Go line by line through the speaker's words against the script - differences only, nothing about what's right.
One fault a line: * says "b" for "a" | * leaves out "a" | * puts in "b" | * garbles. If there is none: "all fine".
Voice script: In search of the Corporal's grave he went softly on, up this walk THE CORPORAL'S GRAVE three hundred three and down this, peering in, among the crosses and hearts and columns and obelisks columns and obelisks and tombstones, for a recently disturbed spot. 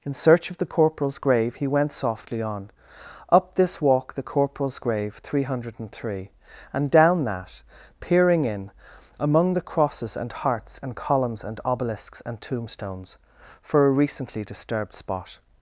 * says "that" for "this"
* leaves out "columns and obelisks"